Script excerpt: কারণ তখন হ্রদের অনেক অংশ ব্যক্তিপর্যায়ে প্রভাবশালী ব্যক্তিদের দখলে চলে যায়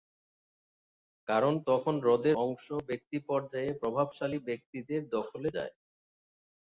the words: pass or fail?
fail